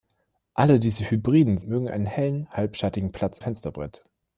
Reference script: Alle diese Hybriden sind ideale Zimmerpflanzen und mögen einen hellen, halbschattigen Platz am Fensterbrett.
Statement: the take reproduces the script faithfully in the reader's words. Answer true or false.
false